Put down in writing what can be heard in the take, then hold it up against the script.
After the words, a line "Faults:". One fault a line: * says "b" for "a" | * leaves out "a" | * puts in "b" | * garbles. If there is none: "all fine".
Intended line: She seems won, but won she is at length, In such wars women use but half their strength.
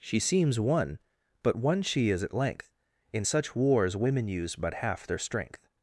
She seems won, but won she is at length, In such wars women use but half their strength.
Faults:
all fine